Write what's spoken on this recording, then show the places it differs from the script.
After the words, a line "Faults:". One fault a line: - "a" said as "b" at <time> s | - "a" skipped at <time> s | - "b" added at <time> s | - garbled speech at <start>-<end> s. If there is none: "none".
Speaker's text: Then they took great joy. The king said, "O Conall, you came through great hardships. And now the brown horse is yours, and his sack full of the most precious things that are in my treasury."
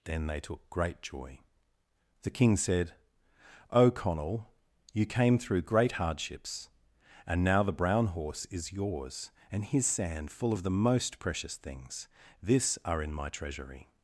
Then they took great joy. The king said, "O Conall, you came through great hardships. And now the brown horse is yours, and his sand full of the most precious things this are in my treasury."
Faults:
- "sack" said as "sand" at 9.8 s
- "that" said as "this" at 12.4 s